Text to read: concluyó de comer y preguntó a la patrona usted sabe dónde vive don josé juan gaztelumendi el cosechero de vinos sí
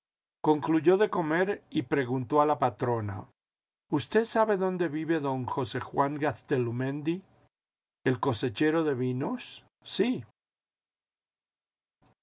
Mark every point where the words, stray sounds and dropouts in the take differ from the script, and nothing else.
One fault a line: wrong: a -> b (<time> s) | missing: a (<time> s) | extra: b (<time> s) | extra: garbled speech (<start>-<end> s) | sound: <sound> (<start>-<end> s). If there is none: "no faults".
no faults